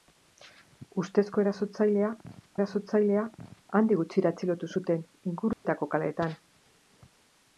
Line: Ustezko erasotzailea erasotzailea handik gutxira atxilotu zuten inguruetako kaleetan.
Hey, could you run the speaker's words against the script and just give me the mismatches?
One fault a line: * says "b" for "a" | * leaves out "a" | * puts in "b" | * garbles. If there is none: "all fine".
all fine